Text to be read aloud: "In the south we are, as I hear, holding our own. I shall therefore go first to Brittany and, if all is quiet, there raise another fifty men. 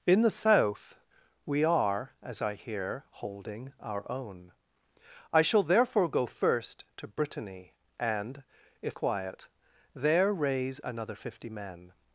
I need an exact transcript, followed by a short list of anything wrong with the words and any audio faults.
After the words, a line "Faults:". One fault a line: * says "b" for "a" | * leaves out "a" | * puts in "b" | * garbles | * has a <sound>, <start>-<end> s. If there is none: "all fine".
"In the south we are, as I hear, holding our own. I shall therefore go first to Brittany and, if quiet, there raise another fifty men.
Faults:
* leaves out "all is"